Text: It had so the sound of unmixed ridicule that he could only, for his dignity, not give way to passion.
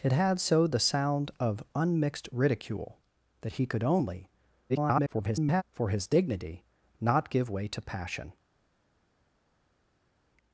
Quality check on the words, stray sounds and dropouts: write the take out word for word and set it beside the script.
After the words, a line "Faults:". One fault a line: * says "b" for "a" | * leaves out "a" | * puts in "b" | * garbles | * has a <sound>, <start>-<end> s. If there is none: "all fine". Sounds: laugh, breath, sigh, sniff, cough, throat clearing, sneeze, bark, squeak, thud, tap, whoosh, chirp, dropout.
It had so the sound of unmixed ridicule that he could only, [garbled] for his dignity, not give way to passion.
Faults:
* garbles